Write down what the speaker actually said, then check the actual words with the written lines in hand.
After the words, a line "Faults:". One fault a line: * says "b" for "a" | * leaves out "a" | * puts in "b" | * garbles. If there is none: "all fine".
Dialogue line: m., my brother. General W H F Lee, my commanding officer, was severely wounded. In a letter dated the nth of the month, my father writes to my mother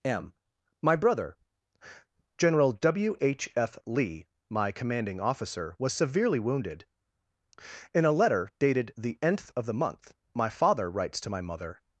m., my brother. General W H F Lee, my commanding officer, was severely wounded. In a letter dated the nth of the month, my father writes to my mother
Faults:
all fine